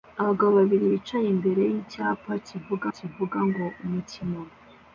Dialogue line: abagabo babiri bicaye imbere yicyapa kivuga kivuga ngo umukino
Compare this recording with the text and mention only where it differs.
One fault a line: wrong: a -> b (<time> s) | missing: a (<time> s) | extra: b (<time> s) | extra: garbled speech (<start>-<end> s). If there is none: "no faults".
no faults